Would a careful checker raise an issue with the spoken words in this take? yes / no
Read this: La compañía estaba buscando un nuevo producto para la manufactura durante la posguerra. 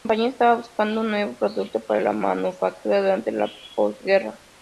no